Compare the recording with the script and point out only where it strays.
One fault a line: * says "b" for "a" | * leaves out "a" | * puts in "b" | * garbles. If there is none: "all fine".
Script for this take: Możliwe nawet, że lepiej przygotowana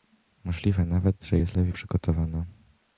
* puts in "jest"